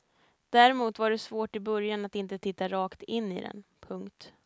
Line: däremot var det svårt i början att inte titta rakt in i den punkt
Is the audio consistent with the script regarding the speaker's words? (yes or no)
yes